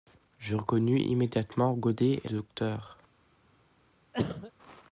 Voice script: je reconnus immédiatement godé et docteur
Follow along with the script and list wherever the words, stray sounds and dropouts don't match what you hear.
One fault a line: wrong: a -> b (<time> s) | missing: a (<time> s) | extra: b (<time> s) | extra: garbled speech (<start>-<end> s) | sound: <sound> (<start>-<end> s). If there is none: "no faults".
sound: cough (4.1-4.5 s)